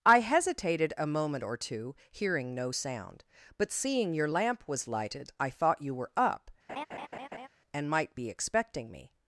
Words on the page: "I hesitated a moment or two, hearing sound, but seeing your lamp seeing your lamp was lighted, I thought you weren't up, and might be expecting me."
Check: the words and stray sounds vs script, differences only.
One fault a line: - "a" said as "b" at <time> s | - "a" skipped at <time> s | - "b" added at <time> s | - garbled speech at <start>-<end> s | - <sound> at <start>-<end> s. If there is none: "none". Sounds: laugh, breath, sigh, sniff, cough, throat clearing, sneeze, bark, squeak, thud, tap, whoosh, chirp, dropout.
- "no" added at 2.5 s
- "seeing your lamp" skipped at 4.7 s
- "weren't" said as "were" at 5.9 s
- laugh at 6.7-7.5 s